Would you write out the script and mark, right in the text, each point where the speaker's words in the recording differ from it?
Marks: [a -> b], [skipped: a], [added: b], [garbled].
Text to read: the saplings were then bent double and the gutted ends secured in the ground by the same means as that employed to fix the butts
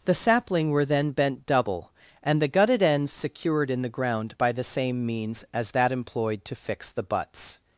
the [saplings -> sapling] were then bent double and the gutted ends secured in the ground by the same means as that employed to fix the butts